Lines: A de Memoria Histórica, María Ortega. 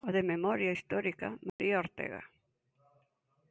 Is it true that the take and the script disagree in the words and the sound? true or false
true